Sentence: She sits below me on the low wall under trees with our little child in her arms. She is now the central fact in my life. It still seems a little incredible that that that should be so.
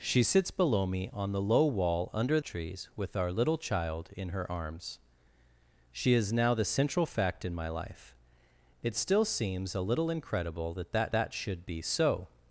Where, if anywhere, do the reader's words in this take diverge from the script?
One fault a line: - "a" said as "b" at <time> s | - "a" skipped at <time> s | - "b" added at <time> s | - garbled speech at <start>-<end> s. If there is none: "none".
none